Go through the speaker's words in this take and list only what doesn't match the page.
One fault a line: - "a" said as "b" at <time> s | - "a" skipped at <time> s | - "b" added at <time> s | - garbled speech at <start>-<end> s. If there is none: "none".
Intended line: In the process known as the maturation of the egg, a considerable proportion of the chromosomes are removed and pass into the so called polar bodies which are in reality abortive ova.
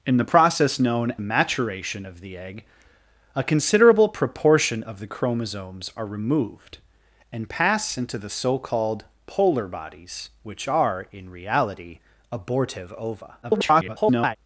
- "as the" skipped at 1.1 s
- garbled speech at 13.4-14.4 s